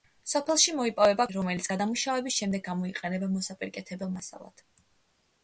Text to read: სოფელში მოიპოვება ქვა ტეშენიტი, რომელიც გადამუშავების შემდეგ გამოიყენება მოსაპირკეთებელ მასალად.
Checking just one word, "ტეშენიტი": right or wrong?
wrong